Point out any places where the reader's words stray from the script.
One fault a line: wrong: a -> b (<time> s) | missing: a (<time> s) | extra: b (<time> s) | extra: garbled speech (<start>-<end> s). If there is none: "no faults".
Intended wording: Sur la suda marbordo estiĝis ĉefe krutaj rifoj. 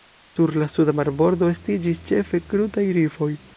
no faults